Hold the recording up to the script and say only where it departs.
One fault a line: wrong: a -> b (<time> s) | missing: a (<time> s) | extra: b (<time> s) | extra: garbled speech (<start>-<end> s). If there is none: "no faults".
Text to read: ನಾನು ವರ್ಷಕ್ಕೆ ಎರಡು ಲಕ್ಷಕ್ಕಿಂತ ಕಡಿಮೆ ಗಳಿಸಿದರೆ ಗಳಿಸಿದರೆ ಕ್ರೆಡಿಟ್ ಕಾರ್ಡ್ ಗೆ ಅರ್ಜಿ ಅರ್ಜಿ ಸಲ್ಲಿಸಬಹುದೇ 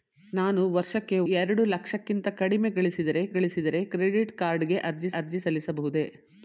no faults